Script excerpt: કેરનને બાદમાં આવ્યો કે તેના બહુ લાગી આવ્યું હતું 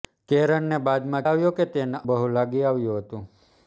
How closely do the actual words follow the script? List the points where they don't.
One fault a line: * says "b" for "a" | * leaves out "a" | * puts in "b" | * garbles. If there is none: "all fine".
all fine